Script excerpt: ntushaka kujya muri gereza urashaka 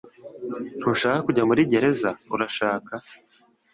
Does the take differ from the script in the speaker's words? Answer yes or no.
no